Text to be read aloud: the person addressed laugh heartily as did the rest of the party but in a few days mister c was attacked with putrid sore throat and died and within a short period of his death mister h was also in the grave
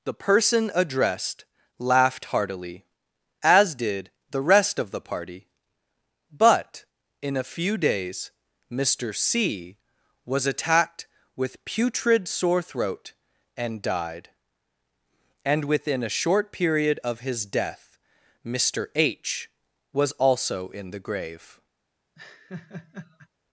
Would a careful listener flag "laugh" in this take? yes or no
yes